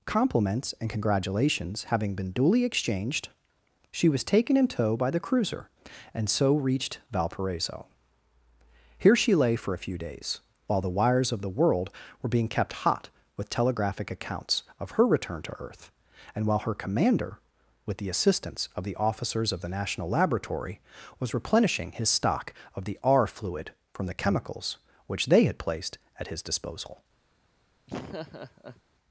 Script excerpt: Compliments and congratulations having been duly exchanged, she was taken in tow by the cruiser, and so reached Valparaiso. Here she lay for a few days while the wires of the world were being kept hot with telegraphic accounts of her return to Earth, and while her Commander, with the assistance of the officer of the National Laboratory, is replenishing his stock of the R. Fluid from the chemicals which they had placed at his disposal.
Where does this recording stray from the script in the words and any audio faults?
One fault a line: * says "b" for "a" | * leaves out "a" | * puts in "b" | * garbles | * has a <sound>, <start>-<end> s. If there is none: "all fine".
* says "officers" for "officer"
* says "was" for "is"
* has a laugh, 27.9-28.8 s